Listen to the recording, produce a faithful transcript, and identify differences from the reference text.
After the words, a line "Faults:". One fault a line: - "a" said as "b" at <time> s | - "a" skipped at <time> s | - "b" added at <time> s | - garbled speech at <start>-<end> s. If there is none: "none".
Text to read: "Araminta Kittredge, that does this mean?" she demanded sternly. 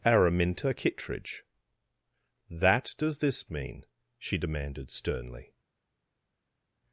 "Araminta Kittredge, that does this mean?" she demanded sternly.
Faults:
none